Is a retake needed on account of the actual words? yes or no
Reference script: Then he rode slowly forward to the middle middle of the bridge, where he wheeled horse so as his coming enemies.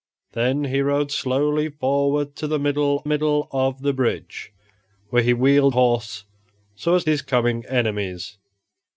no